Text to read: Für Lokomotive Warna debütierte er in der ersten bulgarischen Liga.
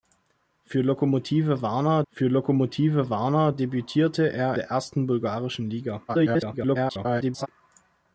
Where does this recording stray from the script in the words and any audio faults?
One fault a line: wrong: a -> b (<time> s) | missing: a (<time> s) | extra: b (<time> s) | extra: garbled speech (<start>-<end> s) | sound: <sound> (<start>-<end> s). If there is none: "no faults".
extra: für Lokomotive Warna (2.1 s)
missing: in (4.5 s)
extra: garbled speech (6.1-7.5 s)